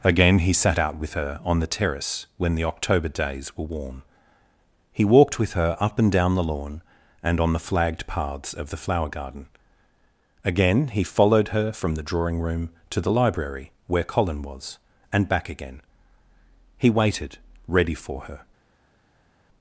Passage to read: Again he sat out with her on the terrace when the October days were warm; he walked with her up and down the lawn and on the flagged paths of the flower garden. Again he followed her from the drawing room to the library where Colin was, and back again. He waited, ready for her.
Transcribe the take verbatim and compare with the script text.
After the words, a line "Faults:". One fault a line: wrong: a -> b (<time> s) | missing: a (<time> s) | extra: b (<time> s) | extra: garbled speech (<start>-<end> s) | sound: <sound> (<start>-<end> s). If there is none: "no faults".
Again he sat out with her on the terrace when the October days were warm; he walked with her up and down the lawn and on the flagged paths of the flower garden. Again he followed her from the drawing room to the library where Colin was, and back again. He waited, ready for her.
Faults:
no faults